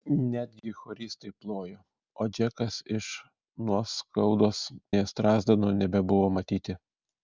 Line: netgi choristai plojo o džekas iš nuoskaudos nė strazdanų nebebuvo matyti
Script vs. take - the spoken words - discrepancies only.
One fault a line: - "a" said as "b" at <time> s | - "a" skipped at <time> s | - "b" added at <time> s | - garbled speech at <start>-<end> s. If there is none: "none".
none